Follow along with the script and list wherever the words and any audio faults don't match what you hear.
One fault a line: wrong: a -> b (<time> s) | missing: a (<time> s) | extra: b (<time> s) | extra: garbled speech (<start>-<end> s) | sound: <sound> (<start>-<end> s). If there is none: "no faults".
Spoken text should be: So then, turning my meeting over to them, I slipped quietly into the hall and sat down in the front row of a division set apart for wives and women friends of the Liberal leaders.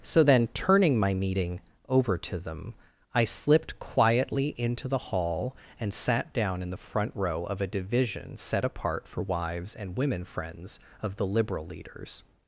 no faults